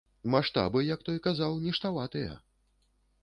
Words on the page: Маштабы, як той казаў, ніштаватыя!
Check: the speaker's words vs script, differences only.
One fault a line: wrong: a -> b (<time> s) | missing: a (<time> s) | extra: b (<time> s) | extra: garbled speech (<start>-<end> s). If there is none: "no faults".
no faults